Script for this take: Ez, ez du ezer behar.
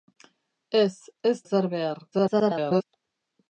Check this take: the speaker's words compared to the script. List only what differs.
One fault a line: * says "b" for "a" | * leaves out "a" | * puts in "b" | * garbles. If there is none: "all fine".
* leaves out "du"
* garbles